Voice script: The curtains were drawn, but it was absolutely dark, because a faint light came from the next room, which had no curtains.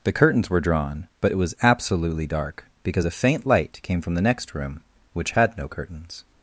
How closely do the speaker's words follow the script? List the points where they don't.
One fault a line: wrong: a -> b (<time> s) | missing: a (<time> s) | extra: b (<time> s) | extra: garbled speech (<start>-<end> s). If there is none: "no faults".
no faults